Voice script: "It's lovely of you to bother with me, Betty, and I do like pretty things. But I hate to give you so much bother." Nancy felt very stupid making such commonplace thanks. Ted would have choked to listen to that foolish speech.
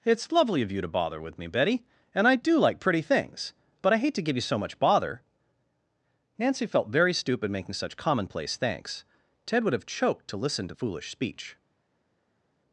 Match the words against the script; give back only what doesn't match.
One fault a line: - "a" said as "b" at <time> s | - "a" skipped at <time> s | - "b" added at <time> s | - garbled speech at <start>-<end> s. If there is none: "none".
- "that" skipped at 10.7 s